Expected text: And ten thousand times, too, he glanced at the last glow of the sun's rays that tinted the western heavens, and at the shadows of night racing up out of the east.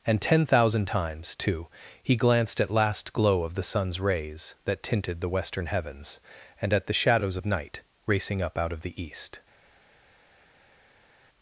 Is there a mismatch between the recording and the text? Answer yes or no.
yes